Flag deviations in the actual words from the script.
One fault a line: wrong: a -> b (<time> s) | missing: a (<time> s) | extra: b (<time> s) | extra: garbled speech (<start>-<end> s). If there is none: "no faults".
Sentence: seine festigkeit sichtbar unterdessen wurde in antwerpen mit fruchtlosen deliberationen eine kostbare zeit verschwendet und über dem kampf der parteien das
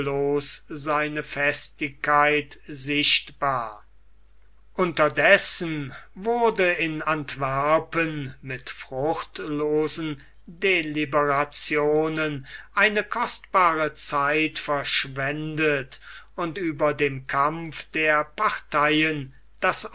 no faults